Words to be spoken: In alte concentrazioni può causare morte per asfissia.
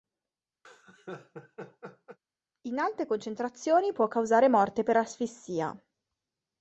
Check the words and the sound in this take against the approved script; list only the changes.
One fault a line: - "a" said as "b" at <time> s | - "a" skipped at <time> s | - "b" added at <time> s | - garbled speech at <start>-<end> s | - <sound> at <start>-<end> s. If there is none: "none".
- laugh at 0.6-2.2 s